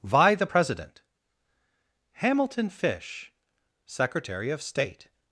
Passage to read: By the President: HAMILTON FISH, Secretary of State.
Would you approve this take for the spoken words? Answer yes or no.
no